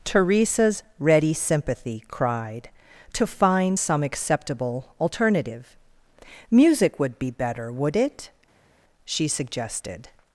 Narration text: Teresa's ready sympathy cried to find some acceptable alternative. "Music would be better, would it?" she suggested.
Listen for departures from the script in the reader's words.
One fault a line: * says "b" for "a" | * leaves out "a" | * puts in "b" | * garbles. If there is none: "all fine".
all fine